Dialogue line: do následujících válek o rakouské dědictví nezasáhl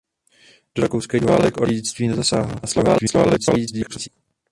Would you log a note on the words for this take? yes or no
yes